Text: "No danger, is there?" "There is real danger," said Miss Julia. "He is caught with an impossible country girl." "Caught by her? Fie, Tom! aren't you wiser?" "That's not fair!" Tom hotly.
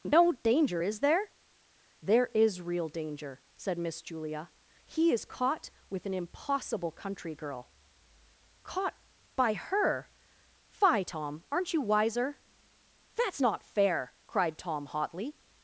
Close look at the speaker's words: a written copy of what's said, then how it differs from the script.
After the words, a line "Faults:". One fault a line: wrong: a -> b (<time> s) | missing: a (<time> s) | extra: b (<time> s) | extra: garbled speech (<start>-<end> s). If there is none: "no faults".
"No danger, is there?" "There is real danger," said Miss Julia. "He is caught with an impossible country girl." "Caught by her? Fie, Tom! aren't you wiser?" "That's not fair!" cried Tom hotly.
Faults:
extra: cried (14.3 s)